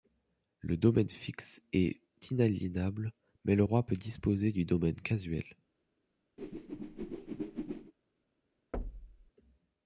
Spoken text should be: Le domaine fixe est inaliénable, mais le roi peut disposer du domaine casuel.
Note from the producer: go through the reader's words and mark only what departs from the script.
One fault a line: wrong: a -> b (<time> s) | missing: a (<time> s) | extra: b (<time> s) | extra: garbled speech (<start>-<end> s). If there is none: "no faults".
no faults